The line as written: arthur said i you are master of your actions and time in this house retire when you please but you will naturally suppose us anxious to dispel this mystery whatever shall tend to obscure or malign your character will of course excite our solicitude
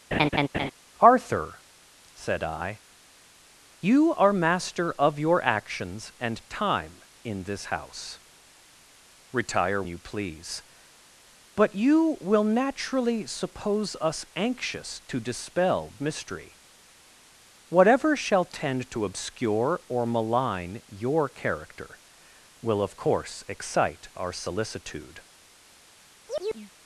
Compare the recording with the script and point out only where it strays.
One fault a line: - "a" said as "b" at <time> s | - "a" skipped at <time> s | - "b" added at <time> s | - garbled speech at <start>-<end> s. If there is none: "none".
- "when" skipped at 9.8 s
- "this" skipped at 15.9 s